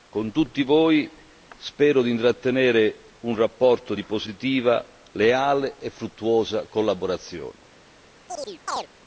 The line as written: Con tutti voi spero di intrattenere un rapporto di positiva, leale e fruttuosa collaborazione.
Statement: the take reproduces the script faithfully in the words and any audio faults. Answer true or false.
false